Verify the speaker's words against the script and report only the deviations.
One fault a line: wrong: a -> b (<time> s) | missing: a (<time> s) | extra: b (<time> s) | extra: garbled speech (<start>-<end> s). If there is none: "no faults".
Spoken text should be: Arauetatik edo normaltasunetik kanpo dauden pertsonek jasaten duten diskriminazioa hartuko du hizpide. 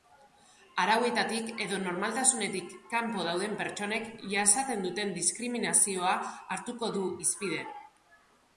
no faults